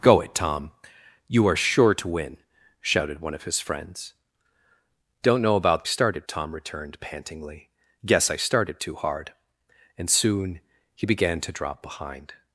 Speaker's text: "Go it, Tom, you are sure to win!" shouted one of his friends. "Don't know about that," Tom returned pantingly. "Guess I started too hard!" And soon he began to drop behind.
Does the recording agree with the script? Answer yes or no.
no